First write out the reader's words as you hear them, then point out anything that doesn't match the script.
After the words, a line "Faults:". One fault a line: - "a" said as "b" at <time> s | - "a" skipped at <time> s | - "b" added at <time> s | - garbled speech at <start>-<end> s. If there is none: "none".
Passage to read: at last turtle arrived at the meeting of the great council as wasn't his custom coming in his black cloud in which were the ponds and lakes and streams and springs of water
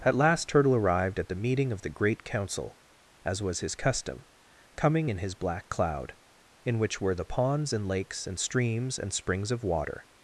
at last turtle arrived at the meeting of the great council as was his custom coming in his black cloud in which were the ponds and lakes and streams and springs of water
Faults:
- "wasn't" said as "was" at 3.4 s